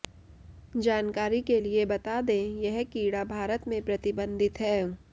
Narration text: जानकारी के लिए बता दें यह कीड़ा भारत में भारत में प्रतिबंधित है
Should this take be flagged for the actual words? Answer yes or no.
yes